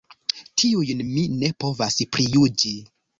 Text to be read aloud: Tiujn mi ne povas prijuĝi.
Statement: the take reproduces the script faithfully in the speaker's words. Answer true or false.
true